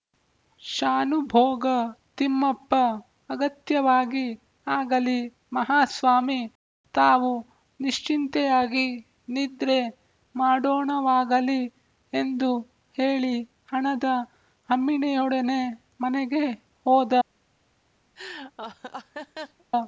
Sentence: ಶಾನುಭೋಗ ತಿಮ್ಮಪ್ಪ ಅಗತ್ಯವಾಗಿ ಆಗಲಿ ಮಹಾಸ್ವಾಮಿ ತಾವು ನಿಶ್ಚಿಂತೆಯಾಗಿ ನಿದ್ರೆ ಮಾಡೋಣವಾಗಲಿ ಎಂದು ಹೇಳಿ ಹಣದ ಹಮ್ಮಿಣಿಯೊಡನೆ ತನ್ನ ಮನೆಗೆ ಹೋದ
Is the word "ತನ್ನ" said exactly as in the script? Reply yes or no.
no